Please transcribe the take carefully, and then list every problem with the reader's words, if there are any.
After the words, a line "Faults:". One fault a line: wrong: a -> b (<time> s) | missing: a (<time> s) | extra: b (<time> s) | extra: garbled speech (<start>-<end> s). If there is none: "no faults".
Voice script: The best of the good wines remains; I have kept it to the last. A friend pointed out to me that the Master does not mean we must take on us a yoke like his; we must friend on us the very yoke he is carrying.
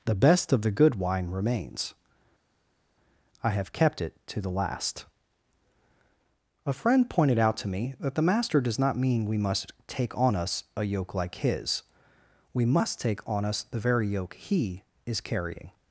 The best of the good wine remains; I have kept it to the last. A friend pointed out to me that the Master does not mean we must take on us a yoke like his; we must take on us the very yoke he is carrying.
Faults:
wrong: wines -> wine (0.9 s)
wrong: friend -> take (13.0 s)